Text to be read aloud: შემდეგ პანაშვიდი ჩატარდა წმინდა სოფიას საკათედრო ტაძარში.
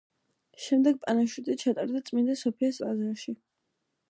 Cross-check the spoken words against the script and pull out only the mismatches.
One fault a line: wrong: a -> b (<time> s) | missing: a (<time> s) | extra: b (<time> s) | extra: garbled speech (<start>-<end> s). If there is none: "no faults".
missing: საკათედრო (2.8 s)